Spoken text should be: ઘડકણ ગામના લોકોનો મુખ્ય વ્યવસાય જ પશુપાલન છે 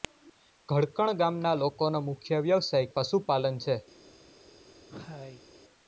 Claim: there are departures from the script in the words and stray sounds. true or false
true